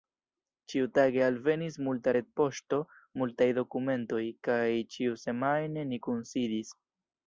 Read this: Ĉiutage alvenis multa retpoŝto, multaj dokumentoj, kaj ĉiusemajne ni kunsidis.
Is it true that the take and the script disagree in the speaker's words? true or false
false